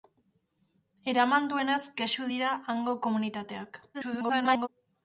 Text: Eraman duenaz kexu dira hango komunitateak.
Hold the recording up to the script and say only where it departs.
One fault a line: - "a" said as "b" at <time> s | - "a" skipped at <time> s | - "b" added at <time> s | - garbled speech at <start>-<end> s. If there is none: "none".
- garbled speech at 3.9-4.7 s